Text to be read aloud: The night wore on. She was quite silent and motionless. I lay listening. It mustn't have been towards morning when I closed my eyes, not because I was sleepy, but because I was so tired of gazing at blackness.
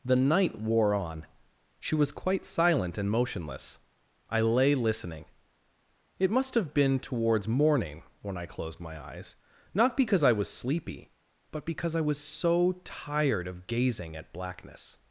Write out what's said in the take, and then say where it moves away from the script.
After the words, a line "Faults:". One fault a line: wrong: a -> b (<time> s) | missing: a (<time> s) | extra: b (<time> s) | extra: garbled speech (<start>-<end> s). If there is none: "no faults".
The night wore on. She was quite silent and motionless. I lay listening. It must have been towards morning when I closed my eyes, not because I was sleepy, but because I was so tired of gazing at blackness.
Faults:
wrong: mustn't -> must (6.3 s)